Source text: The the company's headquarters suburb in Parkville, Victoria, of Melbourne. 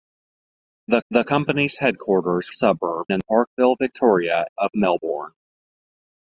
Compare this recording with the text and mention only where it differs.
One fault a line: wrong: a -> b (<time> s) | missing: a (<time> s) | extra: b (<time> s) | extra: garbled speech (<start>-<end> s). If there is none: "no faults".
no faults